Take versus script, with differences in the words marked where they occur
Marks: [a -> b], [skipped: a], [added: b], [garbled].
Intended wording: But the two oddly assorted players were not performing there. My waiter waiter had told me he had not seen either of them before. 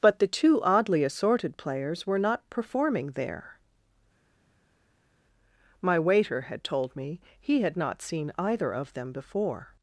But the two oddly assorted players were not performing there. My waiter [skipped: waiter] had told me he had not seen either of them before.